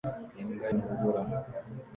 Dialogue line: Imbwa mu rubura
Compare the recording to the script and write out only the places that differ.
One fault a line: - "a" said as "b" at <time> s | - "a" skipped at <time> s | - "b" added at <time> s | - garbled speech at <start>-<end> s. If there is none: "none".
none